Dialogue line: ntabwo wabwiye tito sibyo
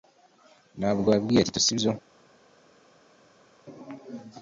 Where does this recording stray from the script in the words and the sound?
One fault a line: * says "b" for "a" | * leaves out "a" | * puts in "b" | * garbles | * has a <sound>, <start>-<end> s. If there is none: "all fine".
all fine